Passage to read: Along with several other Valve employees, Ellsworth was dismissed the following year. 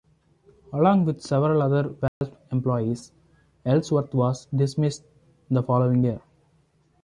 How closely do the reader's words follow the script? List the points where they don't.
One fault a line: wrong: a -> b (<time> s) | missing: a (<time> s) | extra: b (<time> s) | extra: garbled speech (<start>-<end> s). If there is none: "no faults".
no faults